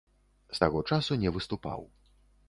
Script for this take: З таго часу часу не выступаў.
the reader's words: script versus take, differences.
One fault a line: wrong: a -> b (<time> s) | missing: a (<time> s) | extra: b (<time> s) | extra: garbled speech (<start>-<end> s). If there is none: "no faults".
missing: часу (1.2 s)